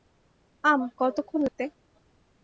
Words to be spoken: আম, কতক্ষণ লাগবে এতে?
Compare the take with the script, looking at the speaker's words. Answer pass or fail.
fail